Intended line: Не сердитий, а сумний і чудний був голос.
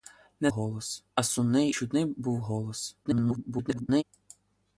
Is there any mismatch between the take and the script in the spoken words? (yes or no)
yes